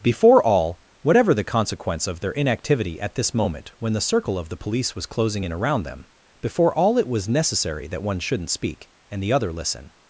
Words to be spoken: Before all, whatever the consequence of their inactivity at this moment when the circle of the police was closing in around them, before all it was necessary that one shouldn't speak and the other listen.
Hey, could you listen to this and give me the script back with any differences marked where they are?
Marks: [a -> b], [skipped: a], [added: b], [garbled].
Before all, whatever the consequence of their inactivity at this moment when the circle of the police was closing in around them, before all it was necessary that one shouldn't speak and the other listen.